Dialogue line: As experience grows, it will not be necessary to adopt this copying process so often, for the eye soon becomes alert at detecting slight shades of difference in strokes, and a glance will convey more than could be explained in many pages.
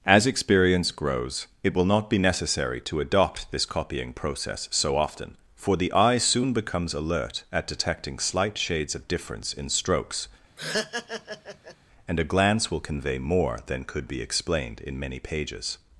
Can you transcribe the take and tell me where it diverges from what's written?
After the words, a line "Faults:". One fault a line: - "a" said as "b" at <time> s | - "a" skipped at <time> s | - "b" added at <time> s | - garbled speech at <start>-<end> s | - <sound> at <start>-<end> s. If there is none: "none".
As experience grows, it will not be necessary to adopt this copying process so often, for the eye soon becomes alert at detecting slight shades of difference in strokes, and a glance will convey more than could be explained in many pages.
Faults:
- laugh at 10.6-11.8 s